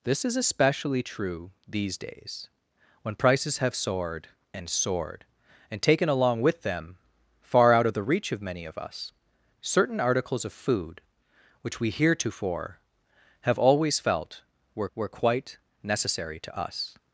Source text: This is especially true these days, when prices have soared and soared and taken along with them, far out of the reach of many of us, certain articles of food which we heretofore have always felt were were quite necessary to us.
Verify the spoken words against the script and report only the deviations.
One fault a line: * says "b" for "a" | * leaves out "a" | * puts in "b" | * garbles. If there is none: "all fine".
all fine